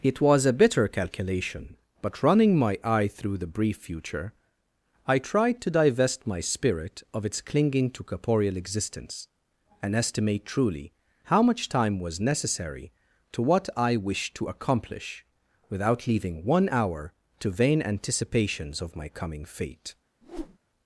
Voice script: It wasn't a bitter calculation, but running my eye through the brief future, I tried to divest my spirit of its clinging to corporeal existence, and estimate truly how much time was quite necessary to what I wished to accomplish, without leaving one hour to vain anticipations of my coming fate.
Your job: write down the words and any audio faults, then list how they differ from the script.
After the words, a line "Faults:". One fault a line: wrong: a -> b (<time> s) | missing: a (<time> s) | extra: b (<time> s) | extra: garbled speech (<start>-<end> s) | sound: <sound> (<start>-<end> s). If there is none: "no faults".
It was a bitter calculation, but running my eye through the brief future, I tried to divest my spirit of its clinging to corporeal existence, and estimate truly how much time was necessary to what I wished to accomplish, without leaving one hour to vain anticipations of my coming fate.
Faults:
wrong: wasn't -> was (0.2 s)
missing: quite (12.2 s)
sound: whoosh (20.2-20.6 s)